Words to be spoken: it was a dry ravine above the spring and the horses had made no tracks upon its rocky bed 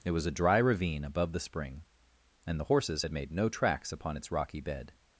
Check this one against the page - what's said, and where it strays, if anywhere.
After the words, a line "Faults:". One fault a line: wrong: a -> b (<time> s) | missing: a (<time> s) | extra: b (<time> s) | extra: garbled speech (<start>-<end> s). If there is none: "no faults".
it was a dry ravine above the spring and the horses had made no tracks upon its rocky bed
Faults:
no faults